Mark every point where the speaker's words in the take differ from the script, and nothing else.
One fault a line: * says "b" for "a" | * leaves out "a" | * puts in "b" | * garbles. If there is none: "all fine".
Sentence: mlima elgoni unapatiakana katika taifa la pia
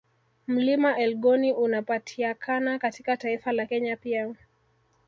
* puts in "kenya"